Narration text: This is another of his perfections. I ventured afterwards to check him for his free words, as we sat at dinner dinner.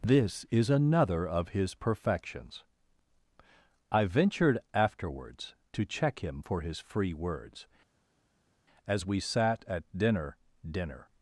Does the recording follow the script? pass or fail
pass